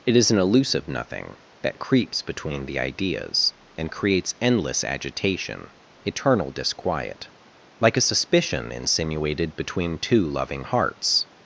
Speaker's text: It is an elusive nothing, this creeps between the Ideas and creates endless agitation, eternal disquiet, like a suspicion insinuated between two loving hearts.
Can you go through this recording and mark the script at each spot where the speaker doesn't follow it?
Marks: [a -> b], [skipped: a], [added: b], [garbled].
It is an elusive nothing, [this -> that] creeps between the Ideas and creates endless agitation, eternal disquiet, like a suspicion insinuated between two loving hearts.